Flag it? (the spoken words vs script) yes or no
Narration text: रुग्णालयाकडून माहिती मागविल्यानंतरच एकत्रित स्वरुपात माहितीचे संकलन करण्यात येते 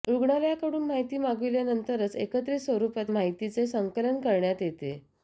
no